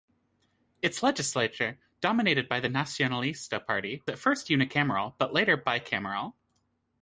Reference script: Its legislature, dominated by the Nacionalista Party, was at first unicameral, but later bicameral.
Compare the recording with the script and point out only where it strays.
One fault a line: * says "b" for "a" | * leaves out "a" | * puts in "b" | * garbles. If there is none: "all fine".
* leaves out "was"